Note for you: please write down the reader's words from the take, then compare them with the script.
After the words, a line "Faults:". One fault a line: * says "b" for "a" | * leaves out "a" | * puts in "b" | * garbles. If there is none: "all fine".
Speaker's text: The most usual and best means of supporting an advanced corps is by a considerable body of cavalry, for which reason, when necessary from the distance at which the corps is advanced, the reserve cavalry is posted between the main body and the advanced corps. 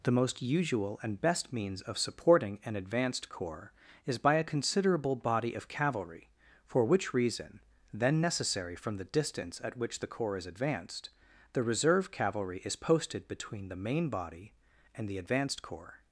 The most usual and best means of supporting an advanced corps is by a considerable body of cavalry, for which reason, then necessary from the distance at which the corps is advanced, the reserve cavalry is posted between the main body and the advanced corps.
Faults:
* says "then" for "when"